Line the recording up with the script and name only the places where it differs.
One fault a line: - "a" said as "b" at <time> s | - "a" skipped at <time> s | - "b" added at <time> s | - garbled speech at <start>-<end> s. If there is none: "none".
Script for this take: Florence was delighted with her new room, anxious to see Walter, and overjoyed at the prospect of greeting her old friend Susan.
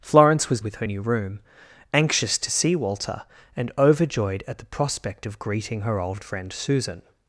- "delighted" skipped at 0.6 s